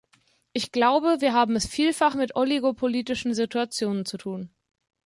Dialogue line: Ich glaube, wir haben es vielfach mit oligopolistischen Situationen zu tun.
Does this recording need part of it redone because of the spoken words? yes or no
no